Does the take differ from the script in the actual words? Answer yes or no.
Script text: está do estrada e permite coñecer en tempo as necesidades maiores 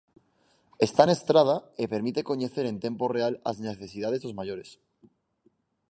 yes